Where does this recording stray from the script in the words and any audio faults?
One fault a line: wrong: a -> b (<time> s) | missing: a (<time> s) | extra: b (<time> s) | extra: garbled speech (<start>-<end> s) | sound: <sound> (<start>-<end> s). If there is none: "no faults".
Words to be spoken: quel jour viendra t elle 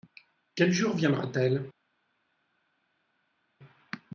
no faults